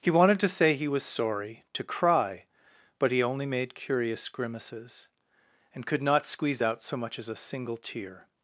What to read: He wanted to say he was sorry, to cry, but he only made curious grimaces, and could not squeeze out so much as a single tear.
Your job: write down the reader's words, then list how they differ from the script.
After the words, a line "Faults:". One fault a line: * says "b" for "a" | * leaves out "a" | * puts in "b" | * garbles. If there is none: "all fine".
He wanted to say he was sorry, to cry, but he only made curious grimaces, and could not squeeze out so much as a single tear.
Faults:
all fine